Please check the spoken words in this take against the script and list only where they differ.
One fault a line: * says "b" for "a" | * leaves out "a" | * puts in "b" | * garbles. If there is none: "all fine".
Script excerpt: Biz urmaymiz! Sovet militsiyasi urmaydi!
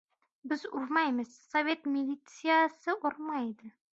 all fine